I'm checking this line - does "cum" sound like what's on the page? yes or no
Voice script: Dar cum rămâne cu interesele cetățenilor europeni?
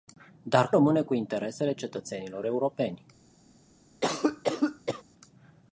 no